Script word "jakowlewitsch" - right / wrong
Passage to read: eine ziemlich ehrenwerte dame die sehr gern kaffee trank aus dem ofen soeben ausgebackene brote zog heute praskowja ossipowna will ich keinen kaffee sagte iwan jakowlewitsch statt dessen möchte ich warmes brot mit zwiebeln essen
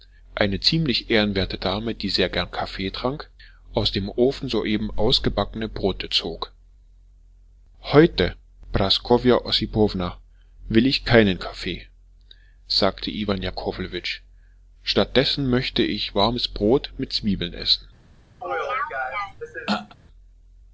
right